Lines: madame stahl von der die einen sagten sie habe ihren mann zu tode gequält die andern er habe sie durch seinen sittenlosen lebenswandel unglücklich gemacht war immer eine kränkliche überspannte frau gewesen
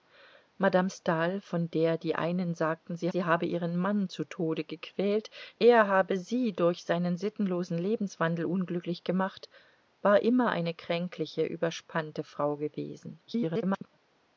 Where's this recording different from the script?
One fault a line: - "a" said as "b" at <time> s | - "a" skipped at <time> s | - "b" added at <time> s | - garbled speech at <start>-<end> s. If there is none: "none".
- "sie" added at 3.1 s
- "die andern" skipped at 5.3 s
- garbled speech at 13.3-14.0 s